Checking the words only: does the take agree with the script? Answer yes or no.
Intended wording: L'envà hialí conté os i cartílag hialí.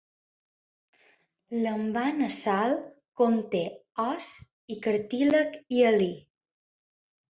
no